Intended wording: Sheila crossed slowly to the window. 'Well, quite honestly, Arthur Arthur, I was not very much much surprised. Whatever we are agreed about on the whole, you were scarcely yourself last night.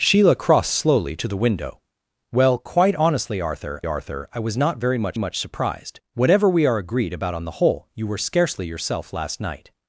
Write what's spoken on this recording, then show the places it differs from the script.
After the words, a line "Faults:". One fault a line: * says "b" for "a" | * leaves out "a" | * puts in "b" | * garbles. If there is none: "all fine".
Sheila crossed slowly to the window. 'Well, quite honestly, Arthur Arthur, I was not very much much surprised. Whatever we are agreed about on the whole, you were scarcely yourself last night.
Faults:
all fine